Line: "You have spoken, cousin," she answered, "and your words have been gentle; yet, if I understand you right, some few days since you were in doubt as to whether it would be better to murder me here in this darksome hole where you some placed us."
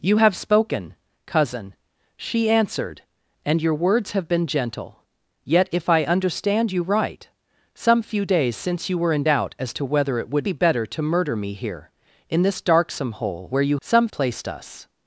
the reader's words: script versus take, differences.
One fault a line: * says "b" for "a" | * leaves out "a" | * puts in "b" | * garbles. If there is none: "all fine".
all fine